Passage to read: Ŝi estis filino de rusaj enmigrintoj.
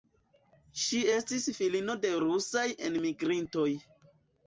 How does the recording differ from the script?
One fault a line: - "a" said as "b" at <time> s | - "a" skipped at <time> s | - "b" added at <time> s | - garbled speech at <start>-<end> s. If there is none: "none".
none